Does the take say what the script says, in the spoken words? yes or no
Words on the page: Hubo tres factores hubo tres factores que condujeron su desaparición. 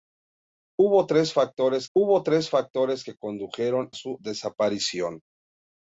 yes